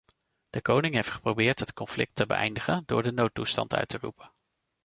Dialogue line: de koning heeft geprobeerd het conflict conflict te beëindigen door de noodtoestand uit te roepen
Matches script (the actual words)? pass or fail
fail